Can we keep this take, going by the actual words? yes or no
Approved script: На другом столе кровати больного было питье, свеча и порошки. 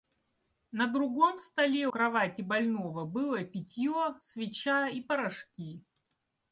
yes